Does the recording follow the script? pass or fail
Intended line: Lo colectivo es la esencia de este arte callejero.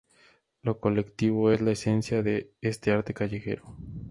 pass